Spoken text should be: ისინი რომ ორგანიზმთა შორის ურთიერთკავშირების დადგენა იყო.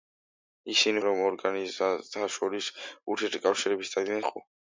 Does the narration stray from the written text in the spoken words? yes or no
no